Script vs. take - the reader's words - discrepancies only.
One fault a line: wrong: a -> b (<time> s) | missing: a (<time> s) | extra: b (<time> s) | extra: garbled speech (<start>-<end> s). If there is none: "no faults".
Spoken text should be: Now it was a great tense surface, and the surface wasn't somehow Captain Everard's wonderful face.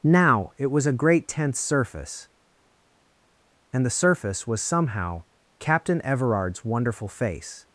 wrong: wasn't -> was (4.5 s)